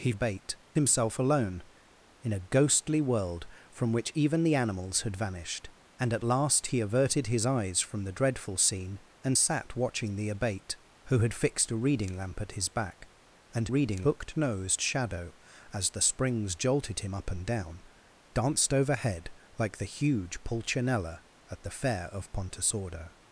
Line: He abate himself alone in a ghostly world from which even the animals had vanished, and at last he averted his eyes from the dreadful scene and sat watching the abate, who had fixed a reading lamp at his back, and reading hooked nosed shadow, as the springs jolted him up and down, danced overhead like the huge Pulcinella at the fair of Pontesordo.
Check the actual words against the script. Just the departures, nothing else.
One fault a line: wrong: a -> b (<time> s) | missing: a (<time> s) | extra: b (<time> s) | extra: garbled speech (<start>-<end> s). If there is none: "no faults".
no faults